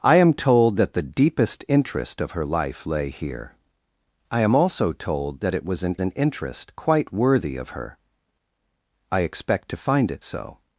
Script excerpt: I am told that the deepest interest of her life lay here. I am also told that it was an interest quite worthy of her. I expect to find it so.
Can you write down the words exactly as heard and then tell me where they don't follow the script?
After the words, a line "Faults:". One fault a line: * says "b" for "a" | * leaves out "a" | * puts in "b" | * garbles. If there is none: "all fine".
I am told that the deepest interest of her life lay here. I am also told that it was an an interest quite worthy of her. I expect to find it so.
Faults:
* puts in "an"